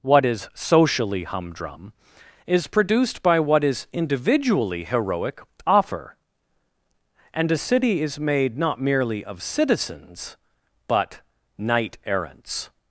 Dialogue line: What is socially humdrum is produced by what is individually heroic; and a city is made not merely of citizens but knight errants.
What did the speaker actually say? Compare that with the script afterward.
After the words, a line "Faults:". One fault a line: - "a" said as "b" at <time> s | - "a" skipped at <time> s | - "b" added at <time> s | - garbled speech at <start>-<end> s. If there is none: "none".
What is socially humdrum is produced by what is individually heroic; offer and a city is made not merely of citizens but knight errants.
Faults:
- "offer" added at 5.7 s